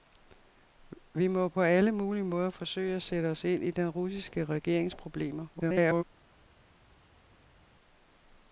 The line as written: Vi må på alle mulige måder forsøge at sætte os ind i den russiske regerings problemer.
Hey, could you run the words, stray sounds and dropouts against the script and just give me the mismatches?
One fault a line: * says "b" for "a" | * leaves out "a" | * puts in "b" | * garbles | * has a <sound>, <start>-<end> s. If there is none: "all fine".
* garbles